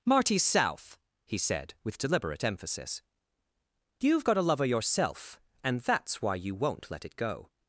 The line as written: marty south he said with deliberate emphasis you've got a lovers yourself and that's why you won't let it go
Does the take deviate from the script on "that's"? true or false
false